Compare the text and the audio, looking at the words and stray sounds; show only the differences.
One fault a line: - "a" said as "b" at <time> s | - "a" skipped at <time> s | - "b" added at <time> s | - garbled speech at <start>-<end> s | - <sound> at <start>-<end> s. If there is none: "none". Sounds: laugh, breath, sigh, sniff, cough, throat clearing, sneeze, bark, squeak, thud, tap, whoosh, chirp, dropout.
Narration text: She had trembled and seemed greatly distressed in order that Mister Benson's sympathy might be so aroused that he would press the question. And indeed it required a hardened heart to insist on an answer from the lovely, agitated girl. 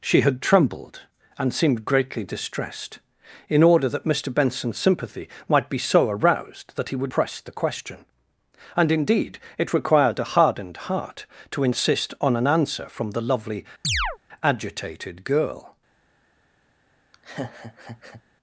- chirp at 13.8-14.2 s
- laugh at 17.1-18.2 s